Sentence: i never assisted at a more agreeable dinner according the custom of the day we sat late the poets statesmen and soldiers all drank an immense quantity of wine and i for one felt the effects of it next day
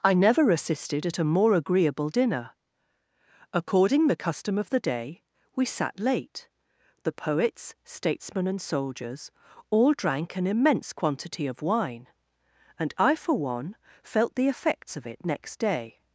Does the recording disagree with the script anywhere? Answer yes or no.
no